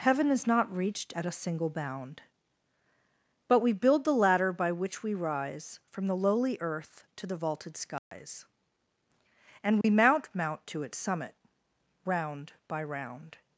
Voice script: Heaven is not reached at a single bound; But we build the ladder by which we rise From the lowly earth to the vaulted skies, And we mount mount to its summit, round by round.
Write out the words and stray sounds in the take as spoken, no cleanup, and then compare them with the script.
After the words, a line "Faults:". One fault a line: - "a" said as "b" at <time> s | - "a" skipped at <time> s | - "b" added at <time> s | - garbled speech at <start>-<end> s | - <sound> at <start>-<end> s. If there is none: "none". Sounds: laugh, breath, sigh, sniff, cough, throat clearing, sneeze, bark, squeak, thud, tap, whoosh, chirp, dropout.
Heaven is not reached at a single bound; But we build the ladder by which we rise From the lowly earth to the vaulted skies, And we mount mount to its summit, round by round.
Faults:
- dropout at 8.0-8.1 s
- dropout at 9.8-9.8 s